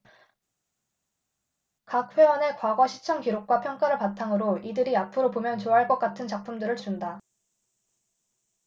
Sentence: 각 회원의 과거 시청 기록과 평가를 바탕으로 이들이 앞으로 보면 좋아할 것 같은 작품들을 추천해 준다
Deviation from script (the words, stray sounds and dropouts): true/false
true